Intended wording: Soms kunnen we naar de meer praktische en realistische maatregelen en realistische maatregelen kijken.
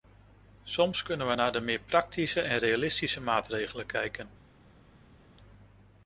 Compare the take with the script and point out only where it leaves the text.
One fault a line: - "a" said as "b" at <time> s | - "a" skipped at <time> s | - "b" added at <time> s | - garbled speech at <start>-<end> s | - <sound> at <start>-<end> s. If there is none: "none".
- "en realistische maatregelen" skipped at 3.9 s